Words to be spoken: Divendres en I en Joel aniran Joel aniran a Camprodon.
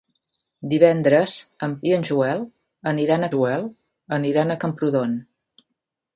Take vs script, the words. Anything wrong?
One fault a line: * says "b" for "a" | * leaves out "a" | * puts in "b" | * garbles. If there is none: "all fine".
all fine